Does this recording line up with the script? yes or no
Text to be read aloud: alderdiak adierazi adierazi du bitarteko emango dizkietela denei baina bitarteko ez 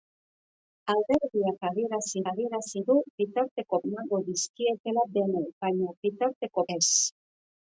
yes